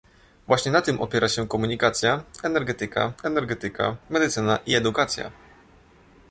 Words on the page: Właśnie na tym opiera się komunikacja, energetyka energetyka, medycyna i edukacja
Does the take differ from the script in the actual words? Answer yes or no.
no